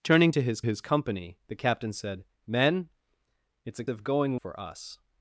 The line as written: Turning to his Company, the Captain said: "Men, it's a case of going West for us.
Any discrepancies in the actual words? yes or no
yes